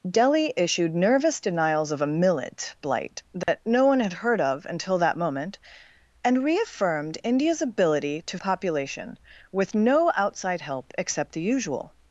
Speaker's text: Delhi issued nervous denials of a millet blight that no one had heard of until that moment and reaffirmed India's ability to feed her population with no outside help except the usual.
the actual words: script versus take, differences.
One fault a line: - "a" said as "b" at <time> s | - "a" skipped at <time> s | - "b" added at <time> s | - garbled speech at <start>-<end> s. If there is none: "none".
- "feed her" skipped at 8.4 s